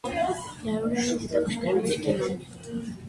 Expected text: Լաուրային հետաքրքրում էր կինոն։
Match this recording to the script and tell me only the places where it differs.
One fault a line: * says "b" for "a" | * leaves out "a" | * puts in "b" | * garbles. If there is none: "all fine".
all fine